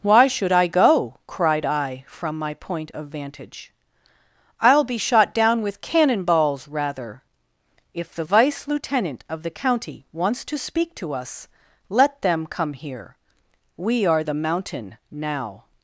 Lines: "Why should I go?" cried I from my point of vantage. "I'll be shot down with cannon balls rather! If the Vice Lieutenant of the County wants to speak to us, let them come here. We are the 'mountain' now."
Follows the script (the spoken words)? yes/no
yes